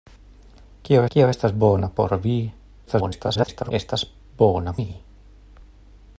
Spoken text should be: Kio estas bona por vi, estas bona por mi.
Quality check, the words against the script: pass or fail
fail